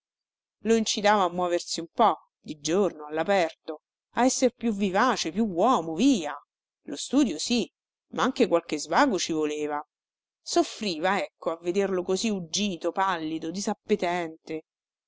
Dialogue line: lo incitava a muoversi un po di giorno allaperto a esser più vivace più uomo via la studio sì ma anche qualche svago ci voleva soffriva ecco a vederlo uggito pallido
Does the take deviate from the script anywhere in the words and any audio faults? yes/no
yes